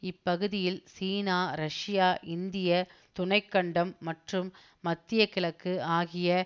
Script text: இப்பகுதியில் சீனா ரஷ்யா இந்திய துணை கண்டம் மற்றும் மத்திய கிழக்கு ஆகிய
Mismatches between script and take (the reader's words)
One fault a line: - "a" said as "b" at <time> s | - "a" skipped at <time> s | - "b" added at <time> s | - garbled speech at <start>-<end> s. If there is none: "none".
none